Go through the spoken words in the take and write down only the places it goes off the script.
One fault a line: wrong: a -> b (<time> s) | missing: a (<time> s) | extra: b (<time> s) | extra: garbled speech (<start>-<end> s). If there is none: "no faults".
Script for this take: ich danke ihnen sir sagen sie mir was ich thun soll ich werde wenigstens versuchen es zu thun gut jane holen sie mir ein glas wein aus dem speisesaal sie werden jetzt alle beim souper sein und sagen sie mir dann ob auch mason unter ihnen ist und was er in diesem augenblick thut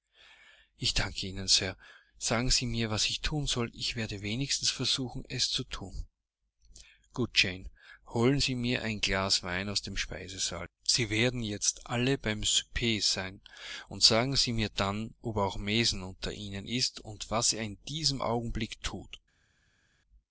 no faults